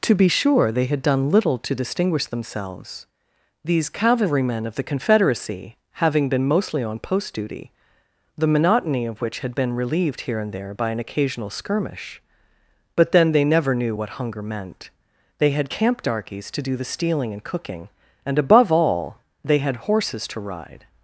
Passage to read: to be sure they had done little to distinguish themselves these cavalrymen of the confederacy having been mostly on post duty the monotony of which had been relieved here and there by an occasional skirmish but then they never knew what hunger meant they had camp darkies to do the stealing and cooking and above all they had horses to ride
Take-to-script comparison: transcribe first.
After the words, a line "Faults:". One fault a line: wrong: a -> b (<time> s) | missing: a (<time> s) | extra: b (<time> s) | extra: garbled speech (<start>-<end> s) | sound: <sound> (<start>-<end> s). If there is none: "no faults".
to be sure they had done little to distinguish themselves these cavalrymen of the confederacy having been mostly on post duty the monotony of which had been relieved here and there by an occasional skirmish but then they never knew what hunger meant they had camp darkies to do the stealing and cooking and above all they had horses to ride
Faults:
no faults